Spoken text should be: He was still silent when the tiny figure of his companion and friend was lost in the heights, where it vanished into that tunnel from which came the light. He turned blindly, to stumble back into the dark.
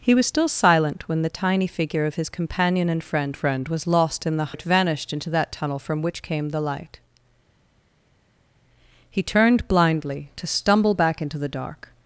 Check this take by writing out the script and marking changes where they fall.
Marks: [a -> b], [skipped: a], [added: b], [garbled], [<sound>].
He was still silent when the tiny figure of his companion and friend [added: friend] was lost in the [skipped: heights, where] it vanished into that tunnel from which came the light. He turned blindly, to stumble back into the dark.